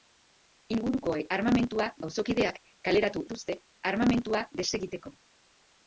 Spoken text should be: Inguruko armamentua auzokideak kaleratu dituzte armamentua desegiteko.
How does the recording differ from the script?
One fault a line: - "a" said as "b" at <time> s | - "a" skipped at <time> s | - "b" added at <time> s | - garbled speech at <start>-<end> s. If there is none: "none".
none